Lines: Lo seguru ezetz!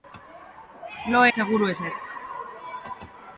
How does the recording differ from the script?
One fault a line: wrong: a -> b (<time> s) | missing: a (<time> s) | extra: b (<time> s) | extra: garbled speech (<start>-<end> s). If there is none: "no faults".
no faults